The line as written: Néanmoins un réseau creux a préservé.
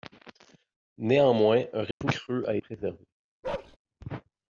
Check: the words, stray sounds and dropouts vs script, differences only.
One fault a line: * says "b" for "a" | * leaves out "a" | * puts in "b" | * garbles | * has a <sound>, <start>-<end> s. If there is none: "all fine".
* has a dropout, 1.9-2.0 s
* has a bark, 3.4-3.8 s